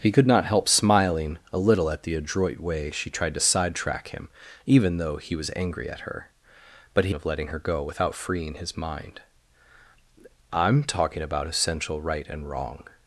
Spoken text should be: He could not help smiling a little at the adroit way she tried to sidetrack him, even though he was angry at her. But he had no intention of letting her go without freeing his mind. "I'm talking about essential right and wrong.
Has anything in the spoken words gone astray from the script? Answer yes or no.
yes